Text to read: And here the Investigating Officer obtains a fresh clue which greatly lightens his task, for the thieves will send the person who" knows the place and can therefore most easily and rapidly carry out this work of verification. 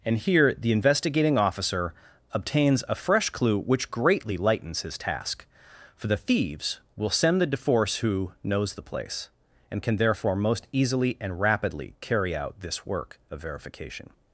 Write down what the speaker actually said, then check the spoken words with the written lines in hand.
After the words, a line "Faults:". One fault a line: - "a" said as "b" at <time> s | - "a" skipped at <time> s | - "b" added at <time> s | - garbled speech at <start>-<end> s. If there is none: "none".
And here the Investigating Officer obtains a fresh clue which greatly lightens his task, for the thieves will send the deforce who" knows the place and can therefore most easily and rapidly carry out this work of verification.
Faults:
- "person" said as "deforce" at 7.5 s